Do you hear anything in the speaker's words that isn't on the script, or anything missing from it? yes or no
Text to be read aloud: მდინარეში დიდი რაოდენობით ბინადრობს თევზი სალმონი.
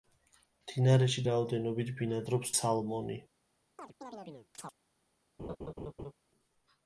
yes